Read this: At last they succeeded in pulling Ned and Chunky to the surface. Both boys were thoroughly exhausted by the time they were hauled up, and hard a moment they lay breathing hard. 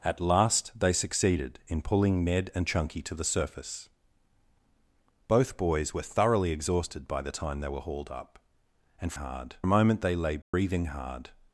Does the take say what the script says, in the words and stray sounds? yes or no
no